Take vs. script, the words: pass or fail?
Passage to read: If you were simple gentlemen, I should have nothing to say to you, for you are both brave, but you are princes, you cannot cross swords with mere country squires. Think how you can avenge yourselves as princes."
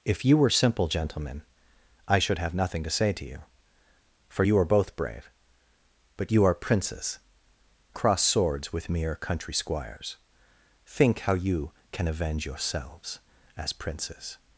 fail